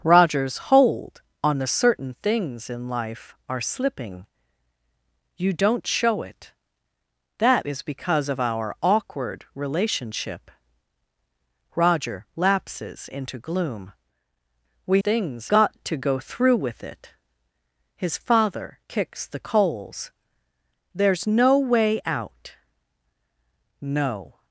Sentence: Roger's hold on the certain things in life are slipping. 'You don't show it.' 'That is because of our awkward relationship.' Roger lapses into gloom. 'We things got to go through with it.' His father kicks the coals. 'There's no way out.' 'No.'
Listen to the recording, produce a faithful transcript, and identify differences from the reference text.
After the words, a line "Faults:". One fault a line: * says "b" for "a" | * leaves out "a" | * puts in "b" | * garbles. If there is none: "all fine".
Roger's hold on the certain things in life are slipping. 'You don't show it.' 'That is because of our awkward relationship.' Roger lapses into gloom. 'We things got to go through with it.' His father kicks the coals. 'There's no way out.' 'No.'
Faults:
all fine